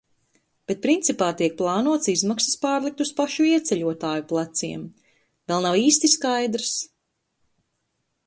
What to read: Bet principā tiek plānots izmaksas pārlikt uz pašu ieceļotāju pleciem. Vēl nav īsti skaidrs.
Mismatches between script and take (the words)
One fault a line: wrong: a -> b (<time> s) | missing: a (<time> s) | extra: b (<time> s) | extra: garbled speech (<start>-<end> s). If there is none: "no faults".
no faults